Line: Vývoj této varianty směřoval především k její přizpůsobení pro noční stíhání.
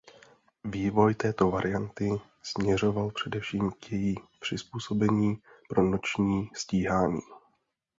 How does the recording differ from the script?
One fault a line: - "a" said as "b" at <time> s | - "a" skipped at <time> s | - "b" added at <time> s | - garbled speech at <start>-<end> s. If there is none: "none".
none